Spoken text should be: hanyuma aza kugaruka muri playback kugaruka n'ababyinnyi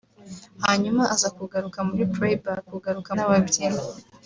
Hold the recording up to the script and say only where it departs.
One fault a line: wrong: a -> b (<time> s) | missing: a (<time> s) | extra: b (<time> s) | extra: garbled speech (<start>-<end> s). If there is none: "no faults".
no faults